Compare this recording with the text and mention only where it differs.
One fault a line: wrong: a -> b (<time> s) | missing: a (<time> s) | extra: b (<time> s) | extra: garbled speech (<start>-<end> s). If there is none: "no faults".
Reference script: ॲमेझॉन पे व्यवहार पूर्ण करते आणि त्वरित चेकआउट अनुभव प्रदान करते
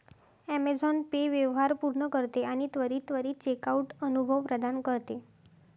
extra: त्वरित (3.1 s)